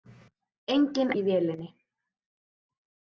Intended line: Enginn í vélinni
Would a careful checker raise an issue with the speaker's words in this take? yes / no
no